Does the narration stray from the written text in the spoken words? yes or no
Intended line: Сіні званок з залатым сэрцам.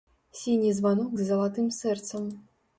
no